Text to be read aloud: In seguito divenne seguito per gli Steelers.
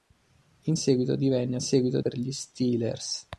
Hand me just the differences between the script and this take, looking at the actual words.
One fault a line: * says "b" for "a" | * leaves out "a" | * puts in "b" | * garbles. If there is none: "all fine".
all fine